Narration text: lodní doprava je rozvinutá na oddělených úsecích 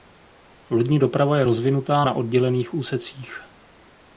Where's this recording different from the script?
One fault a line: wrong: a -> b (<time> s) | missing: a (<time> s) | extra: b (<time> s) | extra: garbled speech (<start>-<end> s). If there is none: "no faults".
no faults